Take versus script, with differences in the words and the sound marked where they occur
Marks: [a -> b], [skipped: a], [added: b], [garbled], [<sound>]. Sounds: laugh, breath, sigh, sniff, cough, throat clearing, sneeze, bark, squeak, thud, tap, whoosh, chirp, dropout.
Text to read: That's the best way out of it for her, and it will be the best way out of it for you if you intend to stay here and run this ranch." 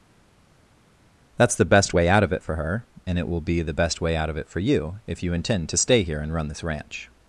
That's the best way out of it for her, and it will be the best way out of it for you if you intend to stay here and run this ranch."